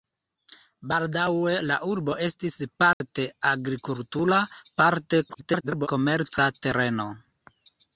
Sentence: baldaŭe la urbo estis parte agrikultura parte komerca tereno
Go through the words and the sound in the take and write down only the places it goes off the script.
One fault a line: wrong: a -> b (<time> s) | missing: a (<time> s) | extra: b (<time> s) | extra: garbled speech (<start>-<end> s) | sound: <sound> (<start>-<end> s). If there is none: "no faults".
sound: dropout (2.9-3.0 s)
extra: garbled speech (5.3-5.9 s)